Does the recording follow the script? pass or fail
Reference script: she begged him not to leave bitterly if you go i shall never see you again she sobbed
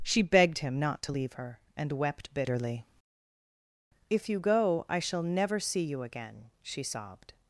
fail